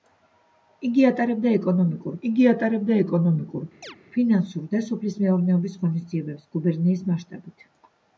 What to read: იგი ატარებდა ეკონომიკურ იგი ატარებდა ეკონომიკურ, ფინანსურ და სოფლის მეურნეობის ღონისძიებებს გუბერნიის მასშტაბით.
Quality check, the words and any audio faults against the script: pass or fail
fail